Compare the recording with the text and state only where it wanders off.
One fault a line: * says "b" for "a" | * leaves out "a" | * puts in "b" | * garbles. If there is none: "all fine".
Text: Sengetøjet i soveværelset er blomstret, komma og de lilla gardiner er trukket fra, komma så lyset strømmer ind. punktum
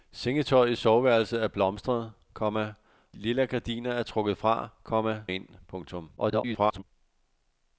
* leaves out "og de"
* leaves out "så lyset strømmer"
* garbles